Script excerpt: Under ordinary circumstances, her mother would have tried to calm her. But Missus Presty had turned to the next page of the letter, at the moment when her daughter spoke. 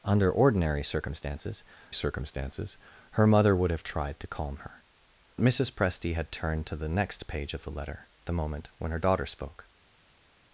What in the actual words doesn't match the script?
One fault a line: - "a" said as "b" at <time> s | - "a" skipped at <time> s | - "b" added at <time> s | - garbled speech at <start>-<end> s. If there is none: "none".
- "circumstances" added at 1.9 s
- "But" skipped at 4.8 s
- "at" skipped at 8.1 s